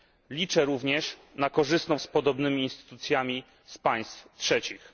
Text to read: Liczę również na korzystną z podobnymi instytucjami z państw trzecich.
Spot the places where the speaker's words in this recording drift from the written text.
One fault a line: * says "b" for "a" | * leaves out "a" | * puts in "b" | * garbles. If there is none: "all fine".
all fine